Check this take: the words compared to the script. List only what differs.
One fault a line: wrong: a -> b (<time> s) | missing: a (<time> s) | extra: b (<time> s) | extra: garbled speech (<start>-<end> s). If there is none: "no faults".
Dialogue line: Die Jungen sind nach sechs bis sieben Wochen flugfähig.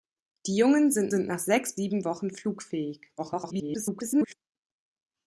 extra: sind (1.1 s)
missing: bis (1.8 s)
extra: garbled speech (3.2-4.3 s)